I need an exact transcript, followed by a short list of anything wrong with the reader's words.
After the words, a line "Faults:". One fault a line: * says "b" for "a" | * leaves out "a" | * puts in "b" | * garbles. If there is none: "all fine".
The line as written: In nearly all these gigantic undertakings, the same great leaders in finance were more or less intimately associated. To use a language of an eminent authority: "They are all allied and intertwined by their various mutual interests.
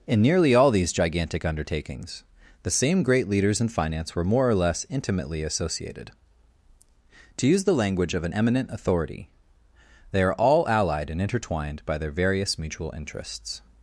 In nearly all these gigantic undertakings, the same great leaders in finance were more or less intimately associated. To use the language of an eminent authority: "They are all allied and intertwined by their various mutual interests.
Faults:
* says "the" for "a"